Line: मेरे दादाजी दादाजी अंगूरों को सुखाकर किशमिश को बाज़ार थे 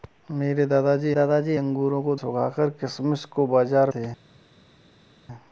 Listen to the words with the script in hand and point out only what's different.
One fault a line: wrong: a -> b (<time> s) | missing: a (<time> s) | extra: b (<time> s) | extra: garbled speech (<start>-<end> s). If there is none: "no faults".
no faults